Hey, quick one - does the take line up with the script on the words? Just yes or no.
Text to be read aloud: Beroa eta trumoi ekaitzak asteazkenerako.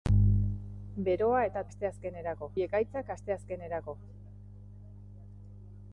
no